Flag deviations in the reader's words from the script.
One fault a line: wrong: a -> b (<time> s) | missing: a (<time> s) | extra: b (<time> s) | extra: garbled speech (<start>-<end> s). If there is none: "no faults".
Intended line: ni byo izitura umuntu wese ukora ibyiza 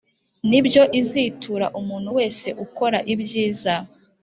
no faults